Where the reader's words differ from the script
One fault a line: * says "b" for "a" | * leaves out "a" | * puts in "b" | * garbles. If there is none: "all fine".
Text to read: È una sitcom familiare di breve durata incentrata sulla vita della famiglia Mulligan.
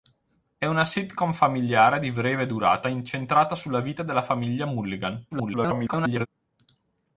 * garbles